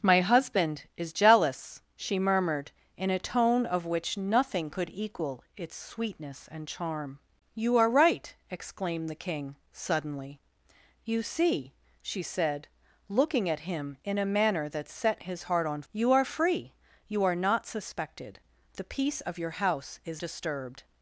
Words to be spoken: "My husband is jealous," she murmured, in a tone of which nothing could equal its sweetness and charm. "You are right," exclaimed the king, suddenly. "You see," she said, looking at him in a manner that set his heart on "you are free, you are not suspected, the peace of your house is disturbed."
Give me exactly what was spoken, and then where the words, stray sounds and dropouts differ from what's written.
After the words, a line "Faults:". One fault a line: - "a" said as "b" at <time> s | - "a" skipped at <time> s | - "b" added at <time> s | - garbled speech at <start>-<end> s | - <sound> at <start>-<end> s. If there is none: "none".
"My husband is jealous," she murmured, in a tone of which nothing could equal its sweetness and charm. "You are right," exclaimed the king, suddenly. "You see," she said, looking at him in a manner that set his heart on "you are free, you are not suspected, the peace of your house is disturbed."
Faults:
none